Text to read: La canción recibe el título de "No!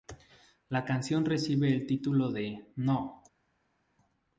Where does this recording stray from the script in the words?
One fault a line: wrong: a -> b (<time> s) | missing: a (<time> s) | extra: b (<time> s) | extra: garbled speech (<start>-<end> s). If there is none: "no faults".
no faults